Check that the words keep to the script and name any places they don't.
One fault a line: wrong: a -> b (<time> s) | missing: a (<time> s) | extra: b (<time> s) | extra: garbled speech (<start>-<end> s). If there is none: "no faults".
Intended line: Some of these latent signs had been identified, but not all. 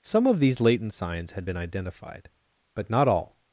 no faults